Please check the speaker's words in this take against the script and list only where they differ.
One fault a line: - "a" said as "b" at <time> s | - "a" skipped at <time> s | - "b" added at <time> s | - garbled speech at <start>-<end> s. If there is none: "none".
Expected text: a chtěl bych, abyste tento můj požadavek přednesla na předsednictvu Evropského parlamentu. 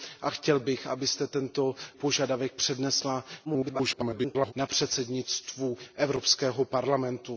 - "můj" skipped at 1.8 s
- garbled speech at 3.4-4.5 s